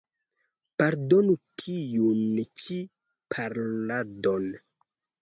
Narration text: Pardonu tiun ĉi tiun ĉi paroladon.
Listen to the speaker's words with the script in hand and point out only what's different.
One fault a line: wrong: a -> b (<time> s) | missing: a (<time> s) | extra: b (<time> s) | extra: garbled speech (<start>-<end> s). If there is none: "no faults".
missing: tiun ĉi (2.8 s)